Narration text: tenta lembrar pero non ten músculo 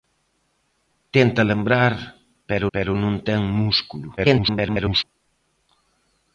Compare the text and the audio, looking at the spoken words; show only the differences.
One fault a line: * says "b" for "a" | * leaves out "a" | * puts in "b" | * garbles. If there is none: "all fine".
* puts in "pero"
* garbles